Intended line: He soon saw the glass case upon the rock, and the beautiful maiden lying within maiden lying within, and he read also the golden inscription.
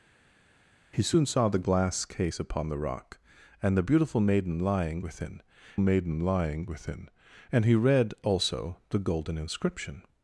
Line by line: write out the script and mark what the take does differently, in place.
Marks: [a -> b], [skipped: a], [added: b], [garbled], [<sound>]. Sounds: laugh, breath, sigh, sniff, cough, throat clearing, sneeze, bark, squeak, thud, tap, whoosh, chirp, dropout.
He soon saw the glass case upon the rock, and the beautiful maiden lying within maiden lying within, and he read also the golden inscription.